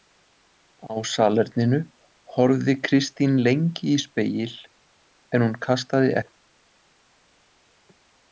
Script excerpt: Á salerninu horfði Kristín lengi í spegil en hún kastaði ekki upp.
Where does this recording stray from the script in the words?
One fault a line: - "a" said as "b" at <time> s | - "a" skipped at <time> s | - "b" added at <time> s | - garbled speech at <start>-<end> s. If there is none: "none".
- "ekki" skipped at 6.1 s